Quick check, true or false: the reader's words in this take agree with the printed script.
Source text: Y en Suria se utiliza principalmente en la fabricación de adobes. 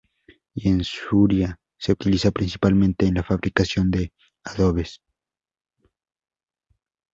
true